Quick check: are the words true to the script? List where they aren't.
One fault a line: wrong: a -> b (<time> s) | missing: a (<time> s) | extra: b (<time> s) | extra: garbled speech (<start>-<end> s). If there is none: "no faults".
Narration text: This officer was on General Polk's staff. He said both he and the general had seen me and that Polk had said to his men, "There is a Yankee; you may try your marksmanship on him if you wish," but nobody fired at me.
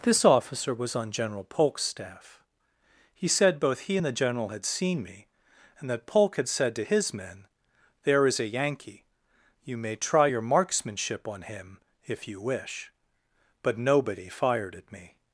no faults